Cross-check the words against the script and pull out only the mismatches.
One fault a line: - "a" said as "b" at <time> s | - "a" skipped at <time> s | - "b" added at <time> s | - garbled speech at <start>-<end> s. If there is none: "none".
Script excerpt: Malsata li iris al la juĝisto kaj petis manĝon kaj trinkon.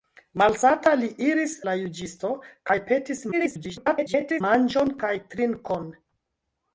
- "al" skipped at 1.5 s
- garbled speech at 3.3-4.4 s